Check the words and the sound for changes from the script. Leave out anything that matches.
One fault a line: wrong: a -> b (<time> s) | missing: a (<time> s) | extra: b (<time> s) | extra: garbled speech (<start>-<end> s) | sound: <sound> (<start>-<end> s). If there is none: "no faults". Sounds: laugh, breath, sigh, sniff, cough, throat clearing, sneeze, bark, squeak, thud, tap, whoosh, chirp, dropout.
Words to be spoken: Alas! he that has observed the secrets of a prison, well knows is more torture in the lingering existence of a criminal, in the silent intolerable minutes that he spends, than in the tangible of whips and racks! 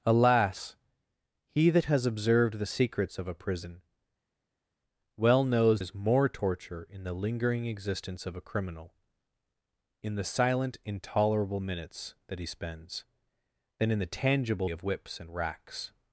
no faults